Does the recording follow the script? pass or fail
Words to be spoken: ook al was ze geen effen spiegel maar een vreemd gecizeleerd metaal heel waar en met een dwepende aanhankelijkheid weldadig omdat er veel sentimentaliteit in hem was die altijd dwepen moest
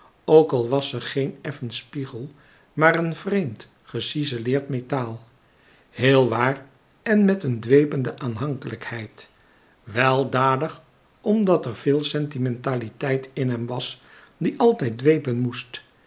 pass